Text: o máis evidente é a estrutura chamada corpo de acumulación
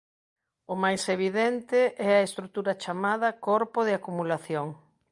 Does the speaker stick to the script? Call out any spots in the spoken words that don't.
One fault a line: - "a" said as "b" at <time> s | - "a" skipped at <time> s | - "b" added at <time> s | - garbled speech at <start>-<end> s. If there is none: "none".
none